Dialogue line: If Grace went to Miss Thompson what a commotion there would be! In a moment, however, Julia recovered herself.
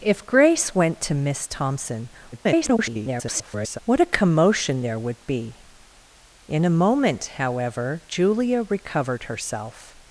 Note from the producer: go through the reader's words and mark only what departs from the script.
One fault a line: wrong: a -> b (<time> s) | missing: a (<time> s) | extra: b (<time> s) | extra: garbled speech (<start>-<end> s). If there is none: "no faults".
extra: garbled speech (2.3-3.8 s)